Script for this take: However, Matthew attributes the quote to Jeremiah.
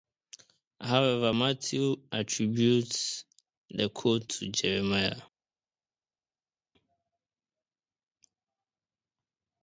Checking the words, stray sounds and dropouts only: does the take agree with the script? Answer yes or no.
yes